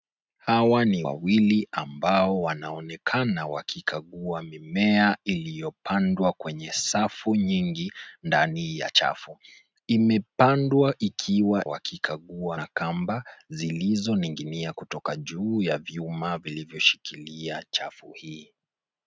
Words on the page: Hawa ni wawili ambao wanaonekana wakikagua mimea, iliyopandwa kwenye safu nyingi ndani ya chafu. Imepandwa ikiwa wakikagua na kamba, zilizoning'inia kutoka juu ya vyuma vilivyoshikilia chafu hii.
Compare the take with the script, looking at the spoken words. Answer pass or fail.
pass